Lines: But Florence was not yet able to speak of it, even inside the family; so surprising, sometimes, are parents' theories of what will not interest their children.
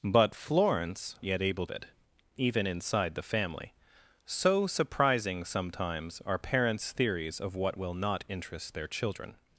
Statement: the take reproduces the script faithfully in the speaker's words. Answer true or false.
false